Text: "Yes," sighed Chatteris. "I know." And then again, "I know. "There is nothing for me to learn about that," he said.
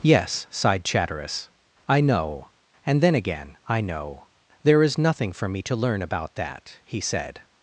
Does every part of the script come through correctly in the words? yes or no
yes